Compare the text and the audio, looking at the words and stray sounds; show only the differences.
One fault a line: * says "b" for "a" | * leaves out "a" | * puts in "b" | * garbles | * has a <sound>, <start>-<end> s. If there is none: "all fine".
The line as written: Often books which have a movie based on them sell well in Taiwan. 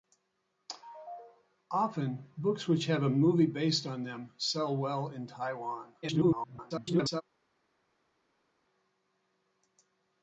* garbles